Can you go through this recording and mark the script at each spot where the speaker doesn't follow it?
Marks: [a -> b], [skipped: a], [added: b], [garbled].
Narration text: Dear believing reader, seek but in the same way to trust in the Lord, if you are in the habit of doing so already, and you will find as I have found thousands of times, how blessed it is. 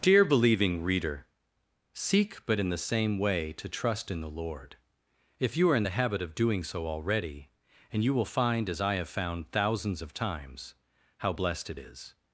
Dear believing reader, seek but in the same way to trust in the Lord, if you are in the habit of doing so already, and you will find as I have found thousands of times, how blessed it is.